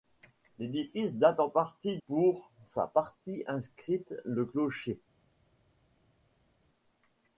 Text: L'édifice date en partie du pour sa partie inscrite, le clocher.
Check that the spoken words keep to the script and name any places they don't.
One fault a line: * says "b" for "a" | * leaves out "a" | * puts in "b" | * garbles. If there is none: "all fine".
* leaves out "du"